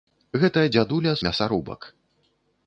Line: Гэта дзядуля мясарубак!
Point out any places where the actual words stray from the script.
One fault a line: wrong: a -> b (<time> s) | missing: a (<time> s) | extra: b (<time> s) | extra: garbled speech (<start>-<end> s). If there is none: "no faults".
no faults